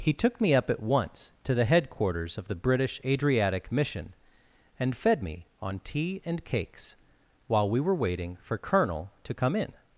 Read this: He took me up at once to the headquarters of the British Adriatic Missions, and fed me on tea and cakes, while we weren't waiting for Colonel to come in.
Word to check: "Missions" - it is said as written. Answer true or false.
false